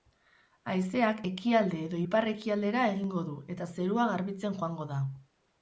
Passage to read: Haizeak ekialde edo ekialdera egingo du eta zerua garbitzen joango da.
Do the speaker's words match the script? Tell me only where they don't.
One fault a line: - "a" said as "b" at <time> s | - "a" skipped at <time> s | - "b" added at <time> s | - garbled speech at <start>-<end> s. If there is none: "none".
- "ipar" added at 2.0 s